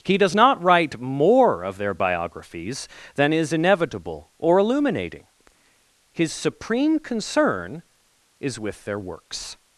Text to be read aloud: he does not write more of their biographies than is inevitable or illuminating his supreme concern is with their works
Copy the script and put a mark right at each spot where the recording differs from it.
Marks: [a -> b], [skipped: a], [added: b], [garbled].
he does not write more of their biographies than is inevitable or illuminating his supreme concern is with their works